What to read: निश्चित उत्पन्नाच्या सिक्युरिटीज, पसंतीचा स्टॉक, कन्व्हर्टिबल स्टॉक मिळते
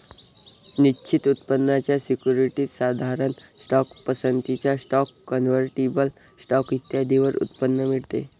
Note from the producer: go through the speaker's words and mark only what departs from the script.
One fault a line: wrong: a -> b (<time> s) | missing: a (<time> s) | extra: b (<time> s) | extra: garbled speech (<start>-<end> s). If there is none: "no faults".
extra: साधारण स्टॉक (2.7 s)
extra: इत्यादींवर उत्पन्न (6.7 s)